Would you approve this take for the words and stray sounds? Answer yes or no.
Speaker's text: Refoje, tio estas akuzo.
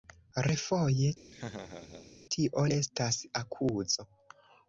no